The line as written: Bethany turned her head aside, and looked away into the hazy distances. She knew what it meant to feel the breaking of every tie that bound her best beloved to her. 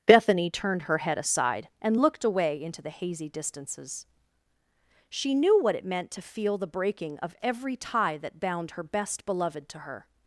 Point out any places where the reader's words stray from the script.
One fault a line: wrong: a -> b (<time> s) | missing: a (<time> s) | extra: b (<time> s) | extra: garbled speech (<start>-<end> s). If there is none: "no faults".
no faults